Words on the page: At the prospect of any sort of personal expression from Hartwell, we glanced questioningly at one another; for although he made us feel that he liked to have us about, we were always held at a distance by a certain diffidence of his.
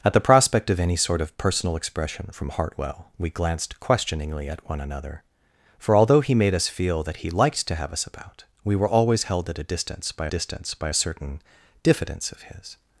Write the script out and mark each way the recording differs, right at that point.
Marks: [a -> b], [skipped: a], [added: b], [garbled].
At the prospect of any sort of personal expression from Hartwell, we glanced questioningly at one another; for although he made us feel that he liked to have us about, we were always held at a distance by [added: distance by] a certain diffidence of his.